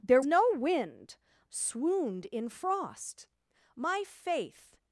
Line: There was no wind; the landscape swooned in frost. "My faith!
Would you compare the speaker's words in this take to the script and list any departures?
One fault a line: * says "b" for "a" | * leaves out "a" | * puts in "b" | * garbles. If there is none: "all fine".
* leaves out "was"
* leaves out "the landscape"